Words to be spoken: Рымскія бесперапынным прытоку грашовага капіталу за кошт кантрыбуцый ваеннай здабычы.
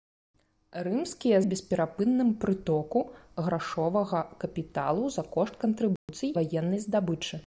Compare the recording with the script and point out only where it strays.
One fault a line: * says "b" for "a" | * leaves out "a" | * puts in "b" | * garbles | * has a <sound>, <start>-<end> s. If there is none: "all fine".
* has a dropout, 6.0-6.1 s